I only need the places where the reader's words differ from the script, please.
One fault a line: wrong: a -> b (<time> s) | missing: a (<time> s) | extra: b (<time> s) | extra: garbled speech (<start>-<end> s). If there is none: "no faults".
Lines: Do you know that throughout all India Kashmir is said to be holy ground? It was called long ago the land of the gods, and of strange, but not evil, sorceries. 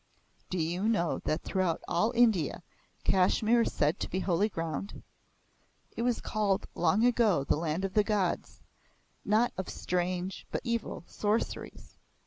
wrong: and -> not (9.3 s)
missing: not (10.6 s)